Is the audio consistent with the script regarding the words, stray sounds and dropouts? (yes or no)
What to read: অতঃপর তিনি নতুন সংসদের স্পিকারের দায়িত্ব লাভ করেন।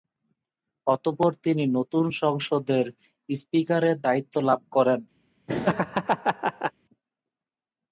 no